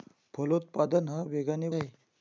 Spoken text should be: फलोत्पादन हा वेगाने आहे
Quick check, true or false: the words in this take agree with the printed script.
true